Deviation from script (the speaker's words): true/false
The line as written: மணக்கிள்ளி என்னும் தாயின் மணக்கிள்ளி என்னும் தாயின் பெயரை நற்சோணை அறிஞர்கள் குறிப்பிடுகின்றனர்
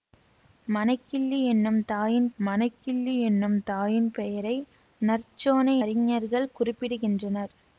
false